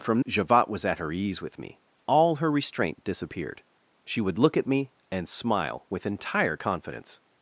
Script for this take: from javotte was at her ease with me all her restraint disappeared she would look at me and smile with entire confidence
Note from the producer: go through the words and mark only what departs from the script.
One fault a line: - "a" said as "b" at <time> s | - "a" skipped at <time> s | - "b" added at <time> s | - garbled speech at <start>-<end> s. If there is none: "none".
none